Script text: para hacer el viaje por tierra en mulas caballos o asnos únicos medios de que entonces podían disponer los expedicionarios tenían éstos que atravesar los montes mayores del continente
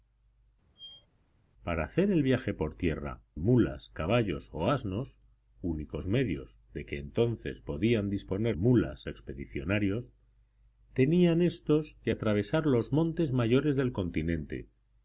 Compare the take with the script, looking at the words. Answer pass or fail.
fail